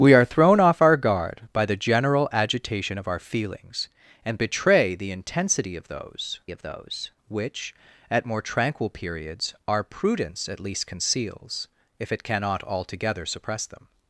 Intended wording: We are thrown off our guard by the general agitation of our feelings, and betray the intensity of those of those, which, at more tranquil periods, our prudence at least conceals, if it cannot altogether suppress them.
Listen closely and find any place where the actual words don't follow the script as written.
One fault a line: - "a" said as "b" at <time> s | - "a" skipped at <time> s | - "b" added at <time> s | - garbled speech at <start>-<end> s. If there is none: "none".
none